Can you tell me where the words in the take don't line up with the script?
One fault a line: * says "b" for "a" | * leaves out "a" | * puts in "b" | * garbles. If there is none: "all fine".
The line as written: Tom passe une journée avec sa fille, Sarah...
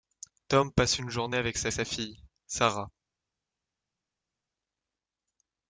* puts in "sa"